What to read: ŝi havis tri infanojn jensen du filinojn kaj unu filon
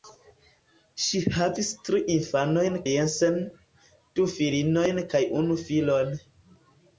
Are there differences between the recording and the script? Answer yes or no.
no